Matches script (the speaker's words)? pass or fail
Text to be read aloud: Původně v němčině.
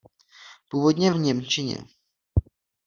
pass